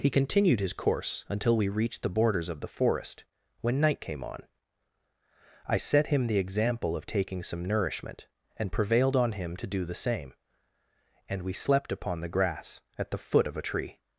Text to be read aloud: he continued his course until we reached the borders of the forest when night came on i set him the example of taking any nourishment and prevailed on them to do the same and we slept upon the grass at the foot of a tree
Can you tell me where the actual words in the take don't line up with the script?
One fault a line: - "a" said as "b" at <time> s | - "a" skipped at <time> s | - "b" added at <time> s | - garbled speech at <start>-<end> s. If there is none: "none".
- "any" said as "some" at 7.4 s
- "them" said as "him" at 9.3 s